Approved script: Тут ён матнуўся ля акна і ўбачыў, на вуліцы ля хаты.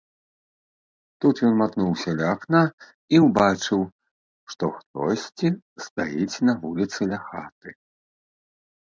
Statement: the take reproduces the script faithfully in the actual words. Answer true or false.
false